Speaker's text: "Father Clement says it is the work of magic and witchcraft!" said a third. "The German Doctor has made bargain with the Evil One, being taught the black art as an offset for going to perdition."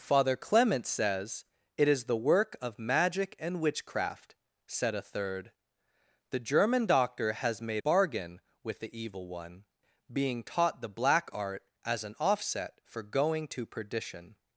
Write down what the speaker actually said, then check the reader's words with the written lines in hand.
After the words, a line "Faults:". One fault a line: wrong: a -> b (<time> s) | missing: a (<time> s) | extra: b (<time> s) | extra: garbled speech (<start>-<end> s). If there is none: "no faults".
"Father Clement says it is the work of magic and witchcraft!" said a third. "The German Doctor has made bargain with the Evil One, being taught the black art as an offset for going to perdition."
Faults:
no faults